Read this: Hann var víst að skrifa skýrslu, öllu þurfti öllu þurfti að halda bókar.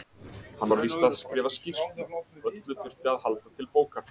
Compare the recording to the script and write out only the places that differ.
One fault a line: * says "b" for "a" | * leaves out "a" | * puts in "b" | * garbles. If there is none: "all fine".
* leaves out "öllu þurfti"
* puts in "til"